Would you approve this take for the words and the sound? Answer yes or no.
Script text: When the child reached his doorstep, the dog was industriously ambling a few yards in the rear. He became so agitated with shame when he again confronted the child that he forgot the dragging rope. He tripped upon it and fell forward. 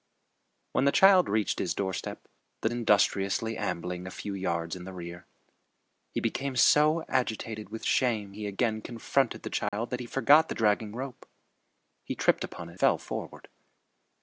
no